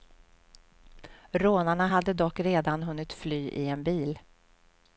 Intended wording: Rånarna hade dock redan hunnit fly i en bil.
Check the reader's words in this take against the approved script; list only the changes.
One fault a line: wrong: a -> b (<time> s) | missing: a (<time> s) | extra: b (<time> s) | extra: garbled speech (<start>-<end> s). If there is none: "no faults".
no faults